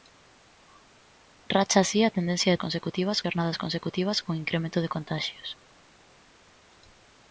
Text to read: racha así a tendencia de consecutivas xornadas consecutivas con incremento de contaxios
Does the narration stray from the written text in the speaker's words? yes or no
no